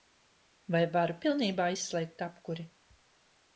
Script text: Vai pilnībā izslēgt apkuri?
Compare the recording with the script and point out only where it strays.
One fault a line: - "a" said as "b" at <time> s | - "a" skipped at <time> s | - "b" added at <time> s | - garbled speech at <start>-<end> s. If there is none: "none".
- "varu" added at 0.9 s